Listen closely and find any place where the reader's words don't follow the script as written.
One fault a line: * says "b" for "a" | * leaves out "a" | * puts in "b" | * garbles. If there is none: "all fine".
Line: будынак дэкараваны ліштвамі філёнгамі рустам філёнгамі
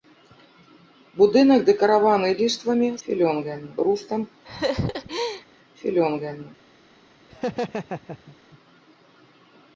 all fine